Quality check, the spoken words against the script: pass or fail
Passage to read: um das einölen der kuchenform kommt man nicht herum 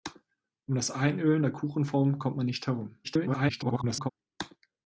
fail